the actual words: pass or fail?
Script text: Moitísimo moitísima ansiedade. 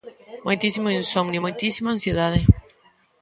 fail